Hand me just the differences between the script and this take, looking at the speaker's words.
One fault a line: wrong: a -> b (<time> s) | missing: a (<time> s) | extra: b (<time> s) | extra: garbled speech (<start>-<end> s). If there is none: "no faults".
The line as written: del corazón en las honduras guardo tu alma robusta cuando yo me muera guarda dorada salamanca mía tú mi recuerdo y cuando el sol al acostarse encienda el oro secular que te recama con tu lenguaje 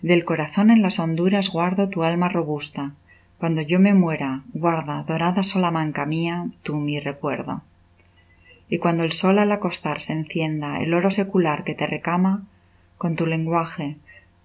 no faults